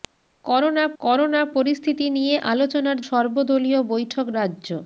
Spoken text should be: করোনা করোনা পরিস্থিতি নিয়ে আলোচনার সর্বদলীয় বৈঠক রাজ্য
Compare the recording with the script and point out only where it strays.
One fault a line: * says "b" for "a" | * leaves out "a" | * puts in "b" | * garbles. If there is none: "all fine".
all fine